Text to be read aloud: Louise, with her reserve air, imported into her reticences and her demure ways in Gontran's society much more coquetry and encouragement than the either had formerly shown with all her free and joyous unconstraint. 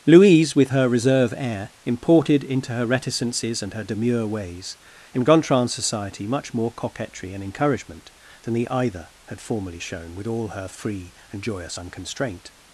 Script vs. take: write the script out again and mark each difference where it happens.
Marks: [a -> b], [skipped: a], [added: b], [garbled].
Louise, with her reserve air, imported into her reticences and her demure ways in Gontran's society much more coquetry and encouragement than the either had formerly shown with all her free and joyous unconstraint.